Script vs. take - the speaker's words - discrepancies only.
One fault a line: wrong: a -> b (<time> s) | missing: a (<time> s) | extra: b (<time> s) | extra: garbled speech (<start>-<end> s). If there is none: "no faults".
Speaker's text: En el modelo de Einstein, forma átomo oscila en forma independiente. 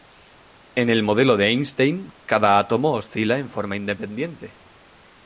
wrong: forma -> cada (2.2 s)